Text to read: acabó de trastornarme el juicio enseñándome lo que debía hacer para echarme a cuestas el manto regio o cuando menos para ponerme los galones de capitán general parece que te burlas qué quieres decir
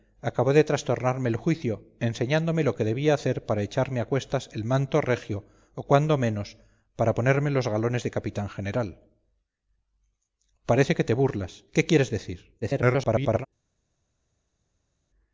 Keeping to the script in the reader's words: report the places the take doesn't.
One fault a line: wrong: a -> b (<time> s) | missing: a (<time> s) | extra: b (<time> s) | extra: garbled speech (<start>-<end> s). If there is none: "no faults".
extra: garbled speech (12.6-13.5 s)